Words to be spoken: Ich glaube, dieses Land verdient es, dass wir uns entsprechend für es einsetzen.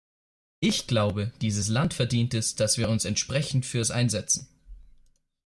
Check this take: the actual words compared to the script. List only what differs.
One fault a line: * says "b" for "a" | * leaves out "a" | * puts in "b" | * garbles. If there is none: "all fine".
all fine